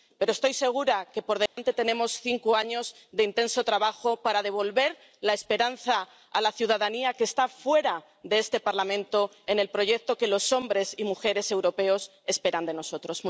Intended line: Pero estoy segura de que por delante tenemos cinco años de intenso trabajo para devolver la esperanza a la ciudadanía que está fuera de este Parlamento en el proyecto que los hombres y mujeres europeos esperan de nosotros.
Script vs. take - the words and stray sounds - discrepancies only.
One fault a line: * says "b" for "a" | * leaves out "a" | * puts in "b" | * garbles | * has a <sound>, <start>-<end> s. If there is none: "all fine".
* has a dropout, 1.5-1.6 s